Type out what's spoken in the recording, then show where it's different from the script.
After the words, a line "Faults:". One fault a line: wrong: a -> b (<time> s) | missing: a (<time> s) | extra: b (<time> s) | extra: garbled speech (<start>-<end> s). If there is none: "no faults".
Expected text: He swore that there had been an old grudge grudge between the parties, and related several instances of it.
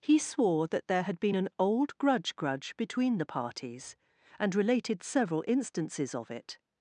He swore that there had been an old grudge grudge between the parties, and related several instances of it.
Faults:
no faults